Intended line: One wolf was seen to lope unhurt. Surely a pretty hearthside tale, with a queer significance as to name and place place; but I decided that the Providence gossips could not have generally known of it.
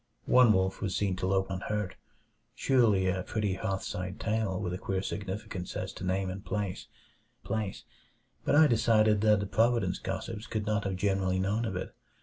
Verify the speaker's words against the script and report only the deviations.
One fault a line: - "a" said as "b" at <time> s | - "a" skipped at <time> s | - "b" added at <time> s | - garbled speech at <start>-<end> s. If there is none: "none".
none